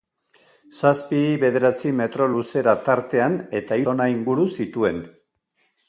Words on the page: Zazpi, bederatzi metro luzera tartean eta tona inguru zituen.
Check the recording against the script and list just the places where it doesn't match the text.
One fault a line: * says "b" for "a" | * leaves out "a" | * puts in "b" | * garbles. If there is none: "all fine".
all fine